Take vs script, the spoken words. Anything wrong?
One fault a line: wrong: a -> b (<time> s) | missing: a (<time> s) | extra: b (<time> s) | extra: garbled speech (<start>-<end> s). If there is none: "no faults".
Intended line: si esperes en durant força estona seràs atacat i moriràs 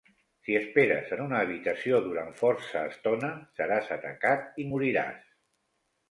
extra: una habitació (1.2 s)